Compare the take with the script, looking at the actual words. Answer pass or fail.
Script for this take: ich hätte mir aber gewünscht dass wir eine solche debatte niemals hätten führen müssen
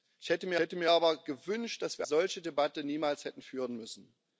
fail